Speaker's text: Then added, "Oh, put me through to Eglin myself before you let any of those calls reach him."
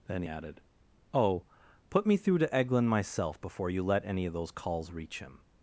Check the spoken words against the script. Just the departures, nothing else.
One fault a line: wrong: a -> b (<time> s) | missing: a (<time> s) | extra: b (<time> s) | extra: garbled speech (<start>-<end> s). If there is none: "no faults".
no faults